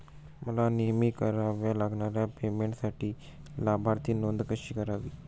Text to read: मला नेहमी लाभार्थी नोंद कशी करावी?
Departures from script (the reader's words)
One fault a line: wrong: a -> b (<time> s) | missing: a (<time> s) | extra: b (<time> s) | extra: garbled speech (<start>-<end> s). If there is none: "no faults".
extra: कराव्या लागणाऱ्या पेमेंटसाठी (1.1 s)